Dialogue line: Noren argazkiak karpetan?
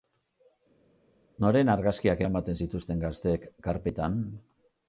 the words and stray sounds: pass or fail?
fail